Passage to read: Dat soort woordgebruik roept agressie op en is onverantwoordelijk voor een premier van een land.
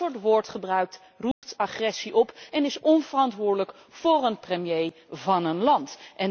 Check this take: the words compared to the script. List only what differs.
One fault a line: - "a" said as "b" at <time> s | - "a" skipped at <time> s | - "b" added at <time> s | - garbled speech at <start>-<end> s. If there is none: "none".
none